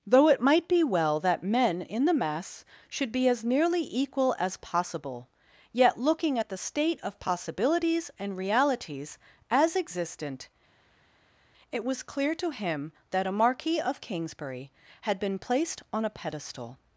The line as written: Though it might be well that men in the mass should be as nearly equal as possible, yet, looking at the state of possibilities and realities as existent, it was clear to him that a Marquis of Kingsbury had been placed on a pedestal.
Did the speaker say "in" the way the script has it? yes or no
yes